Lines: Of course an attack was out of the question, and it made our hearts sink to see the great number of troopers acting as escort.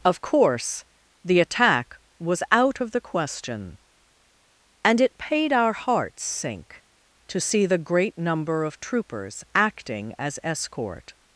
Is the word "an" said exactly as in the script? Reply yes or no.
no